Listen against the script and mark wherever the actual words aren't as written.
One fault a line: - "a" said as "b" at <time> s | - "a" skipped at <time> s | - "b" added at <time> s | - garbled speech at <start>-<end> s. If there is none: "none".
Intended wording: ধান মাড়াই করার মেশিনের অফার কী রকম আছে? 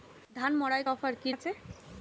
- "করার মেশিনের" skipped at 0.8 s
- "রকম" skipped at 1.3 s